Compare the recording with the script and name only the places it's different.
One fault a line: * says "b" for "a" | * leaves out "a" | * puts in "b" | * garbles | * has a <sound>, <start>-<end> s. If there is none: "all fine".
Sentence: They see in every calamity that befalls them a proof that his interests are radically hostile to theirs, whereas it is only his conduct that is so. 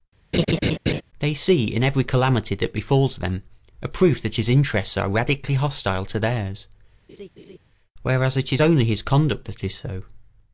* has a laugh, 0.3-1.0 s
* has a laugh, 7.1-7.6 s